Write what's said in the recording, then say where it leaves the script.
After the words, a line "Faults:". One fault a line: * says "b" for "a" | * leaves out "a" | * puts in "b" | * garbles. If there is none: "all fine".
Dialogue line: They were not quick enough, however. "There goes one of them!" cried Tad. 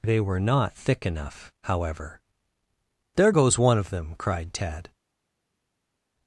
They were not thick enough, however. "There goes one of them!" cried Tad.
Faults:
* says "thick" for "quick"